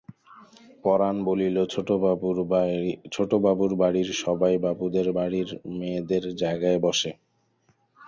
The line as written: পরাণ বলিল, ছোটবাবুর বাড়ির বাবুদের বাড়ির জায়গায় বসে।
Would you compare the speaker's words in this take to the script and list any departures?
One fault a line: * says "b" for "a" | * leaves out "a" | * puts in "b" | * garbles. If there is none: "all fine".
* puts in "সবাই"
* puts in "মেয়েদের"